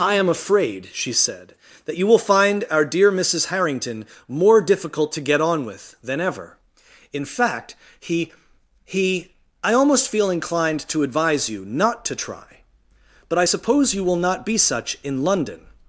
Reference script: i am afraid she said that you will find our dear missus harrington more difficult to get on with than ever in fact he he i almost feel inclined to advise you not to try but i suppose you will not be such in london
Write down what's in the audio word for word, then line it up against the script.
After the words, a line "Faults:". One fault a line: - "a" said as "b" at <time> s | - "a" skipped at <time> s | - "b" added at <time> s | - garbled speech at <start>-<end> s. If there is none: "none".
i am afraid she said that you will find our dear missus harrington more difficult to get on with than ever in fact he he i almost feel inclined to advise you not to try but i suppose you will not be such in london
Faults:
none